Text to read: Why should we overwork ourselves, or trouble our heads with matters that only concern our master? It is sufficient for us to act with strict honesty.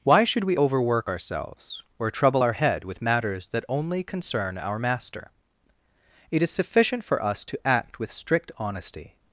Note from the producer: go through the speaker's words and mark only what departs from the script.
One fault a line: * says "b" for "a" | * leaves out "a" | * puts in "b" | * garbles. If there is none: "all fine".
* says "head" for "heads"